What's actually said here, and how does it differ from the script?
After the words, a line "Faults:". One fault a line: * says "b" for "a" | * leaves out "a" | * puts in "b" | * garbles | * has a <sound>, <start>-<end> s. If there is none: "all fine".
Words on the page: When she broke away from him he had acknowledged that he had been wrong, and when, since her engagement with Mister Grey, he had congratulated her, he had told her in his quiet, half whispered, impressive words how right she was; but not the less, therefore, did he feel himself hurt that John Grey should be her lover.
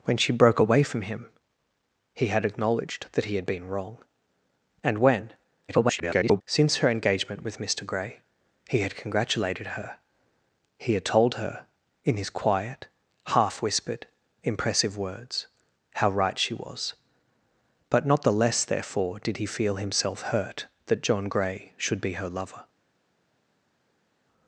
When she broke away from him he had acknowledged that he had been wrong, and when, [garbled] since her engagement with Mister Grey, he had congratulated her, he had told her in his quiet, half whispered, impressive words how right she was; but not the less, therefore, did he feel himself hurt that John Grey should be her lover.
Faults:
* garbles